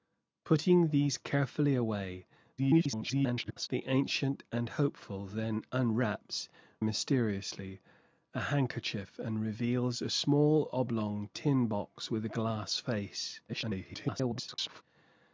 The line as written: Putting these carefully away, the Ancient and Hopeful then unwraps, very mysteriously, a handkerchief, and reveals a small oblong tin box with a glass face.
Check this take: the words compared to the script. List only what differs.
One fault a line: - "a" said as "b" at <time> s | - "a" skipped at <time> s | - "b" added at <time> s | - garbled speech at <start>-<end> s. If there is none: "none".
- garbled speech at 2.6-3.7 s
- "very" skipped at 6.5 s
- garbled speech at 13.5-14.8 s